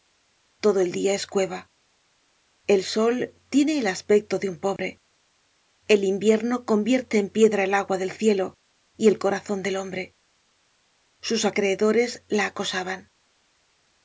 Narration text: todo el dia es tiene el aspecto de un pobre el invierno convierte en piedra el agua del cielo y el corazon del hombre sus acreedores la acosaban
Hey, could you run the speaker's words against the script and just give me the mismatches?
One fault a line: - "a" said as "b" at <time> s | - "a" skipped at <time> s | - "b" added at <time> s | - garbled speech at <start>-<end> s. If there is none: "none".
- "cueva el sol" added at 1.3 s